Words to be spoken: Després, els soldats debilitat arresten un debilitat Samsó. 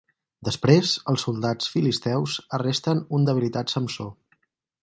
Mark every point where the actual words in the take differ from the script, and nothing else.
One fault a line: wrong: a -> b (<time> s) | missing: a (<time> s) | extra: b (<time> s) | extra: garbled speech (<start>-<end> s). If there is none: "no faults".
wrong: debilitat -> filisteus (1.7 s)